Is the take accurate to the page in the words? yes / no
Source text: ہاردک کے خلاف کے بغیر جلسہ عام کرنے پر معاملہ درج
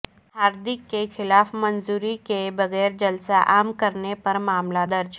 no